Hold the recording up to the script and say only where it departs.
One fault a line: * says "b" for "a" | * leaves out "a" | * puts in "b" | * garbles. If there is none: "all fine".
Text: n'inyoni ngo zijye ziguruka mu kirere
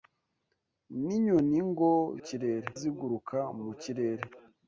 * says "kirere" for "zijye"